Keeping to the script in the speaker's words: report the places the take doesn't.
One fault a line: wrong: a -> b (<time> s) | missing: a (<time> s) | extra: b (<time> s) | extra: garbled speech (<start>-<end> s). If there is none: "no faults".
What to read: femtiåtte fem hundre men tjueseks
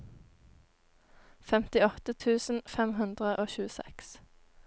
extra: tusen (2.2 s)
wrong: men -> og (3.4 s)